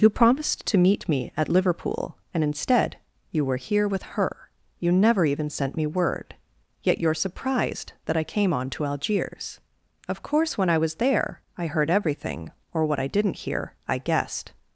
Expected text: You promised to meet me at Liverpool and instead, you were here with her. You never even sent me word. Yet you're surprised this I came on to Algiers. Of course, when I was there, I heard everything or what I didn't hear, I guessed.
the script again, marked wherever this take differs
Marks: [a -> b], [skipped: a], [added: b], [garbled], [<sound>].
You promised to meet me at Liverpool and instead, you were here with her. You never even sent me word. Yet you're surprised [this -> that] I came on to Algiers. Of course, when I was there, I heard everything or what I didn't hear, I guessed.